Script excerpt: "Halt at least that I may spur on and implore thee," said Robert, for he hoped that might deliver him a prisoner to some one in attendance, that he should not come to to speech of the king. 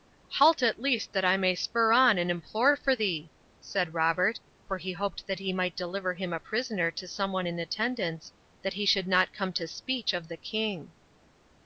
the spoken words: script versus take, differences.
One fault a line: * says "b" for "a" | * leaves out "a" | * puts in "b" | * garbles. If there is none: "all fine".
* puts in "for"
* puts in "he"
* leaves out "to"